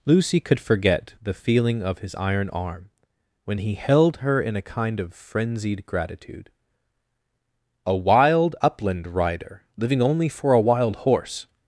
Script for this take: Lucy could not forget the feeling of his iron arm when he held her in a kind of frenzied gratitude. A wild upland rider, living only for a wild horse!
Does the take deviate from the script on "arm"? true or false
false